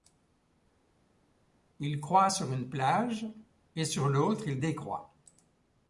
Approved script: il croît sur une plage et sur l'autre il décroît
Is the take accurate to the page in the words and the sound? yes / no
yes